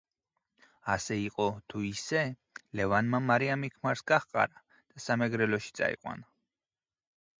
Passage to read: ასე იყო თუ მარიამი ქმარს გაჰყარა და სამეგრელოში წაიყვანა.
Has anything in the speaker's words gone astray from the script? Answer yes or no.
yes